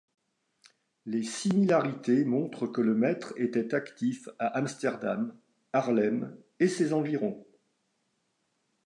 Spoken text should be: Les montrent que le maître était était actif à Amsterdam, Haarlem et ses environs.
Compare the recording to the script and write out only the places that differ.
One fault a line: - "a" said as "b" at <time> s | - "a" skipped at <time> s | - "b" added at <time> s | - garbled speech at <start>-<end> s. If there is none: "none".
- "similarités" added at 1.2 s
- "était" skipped at 3.8 s